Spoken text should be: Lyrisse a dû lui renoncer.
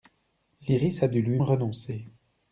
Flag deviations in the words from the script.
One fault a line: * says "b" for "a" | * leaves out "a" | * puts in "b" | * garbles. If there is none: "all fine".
all fine